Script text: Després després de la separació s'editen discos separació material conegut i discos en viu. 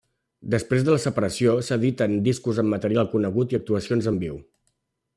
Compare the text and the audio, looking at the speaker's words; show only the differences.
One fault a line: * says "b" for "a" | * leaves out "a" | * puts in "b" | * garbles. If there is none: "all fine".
* leaves out "després"
* says "amb" for "separació"
* says "actuacions" for "discos"